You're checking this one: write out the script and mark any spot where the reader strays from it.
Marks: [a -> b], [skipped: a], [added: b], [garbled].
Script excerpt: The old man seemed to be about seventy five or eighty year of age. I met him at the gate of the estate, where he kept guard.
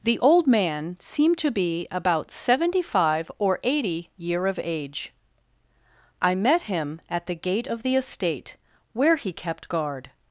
The old man seemed to be about seventy five or eighty year of age. I met him at the gate of the estate, where he kept guard.